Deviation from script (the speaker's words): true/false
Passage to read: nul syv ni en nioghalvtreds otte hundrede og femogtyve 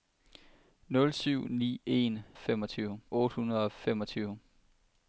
true